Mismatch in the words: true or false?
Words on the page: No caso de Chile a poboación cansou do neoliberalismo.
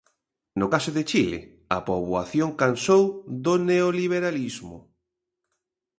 false